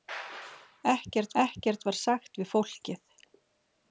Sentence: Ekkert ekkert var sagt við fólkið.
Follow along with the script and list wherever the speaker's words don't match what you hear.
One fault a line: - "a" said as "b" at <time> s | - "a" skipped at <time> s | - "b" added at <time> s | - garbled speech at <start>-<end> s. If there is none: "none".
none